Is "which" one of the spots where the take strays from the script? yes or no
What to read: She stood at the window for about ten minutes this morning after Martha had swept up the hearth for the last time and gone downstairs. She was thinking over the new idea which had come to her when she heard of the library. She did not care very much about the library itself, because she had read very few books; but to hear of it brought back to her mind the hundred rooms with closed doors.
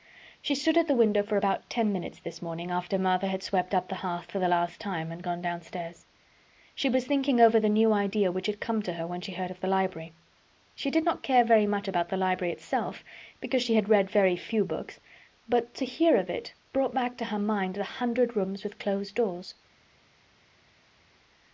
no